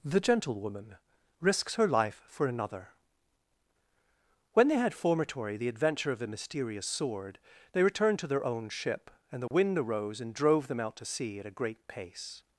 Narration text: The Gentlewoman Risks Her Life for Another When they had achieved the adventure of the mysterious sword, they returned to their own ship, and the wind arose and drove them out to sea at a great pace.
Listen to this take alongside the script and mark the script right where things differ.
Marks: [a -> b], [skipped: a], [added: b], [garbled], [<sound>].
The Gentlewoman Risks Her Life for Another When they had [achieved -> formatory] the adventure of the mysterious sword, they returned to their own ship, and the [dropout] wind arose and drove them out to sea at a great pace.